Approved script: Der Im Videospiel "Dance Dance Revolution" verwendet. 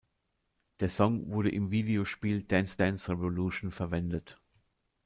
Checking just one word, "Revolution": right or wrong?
right